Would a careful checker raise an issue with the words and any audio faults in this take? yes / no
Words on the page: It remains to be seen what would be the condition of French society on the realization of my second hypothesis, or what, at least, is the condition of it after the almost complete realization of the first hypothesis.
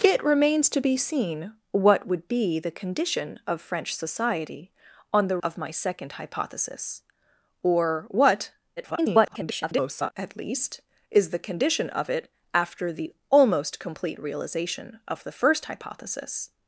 yes